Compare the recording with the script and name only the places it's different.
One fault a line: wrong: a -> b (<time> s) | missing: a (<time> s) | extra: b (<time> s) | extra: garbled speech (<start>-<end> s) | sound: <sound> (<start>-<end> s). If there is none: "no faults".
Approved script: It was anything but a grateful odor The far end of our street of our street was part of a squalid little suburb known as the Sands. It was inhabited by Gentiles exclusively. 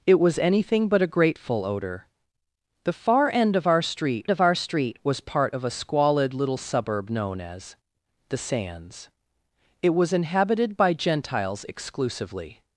no faults